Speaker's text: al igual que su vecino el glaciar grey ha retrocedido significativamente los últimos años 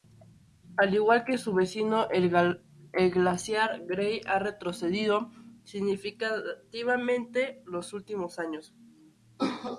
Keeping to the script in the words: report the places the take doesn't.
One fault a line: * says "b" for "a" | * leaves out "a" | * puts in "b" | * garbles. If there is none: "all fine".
all fine